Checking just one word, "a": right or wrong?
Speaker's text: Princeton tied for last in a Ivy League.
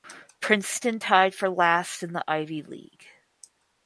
wrong